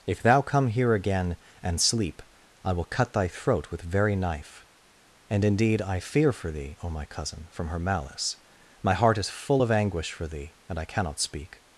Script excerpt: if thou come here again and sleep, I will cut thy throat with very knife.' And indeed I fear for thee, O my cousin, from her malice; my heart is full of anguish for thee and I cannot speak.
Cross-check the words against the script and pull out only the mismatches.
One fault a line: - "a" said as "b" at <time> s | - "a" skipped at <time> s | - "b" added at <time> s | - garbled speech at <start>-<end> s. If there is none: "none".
none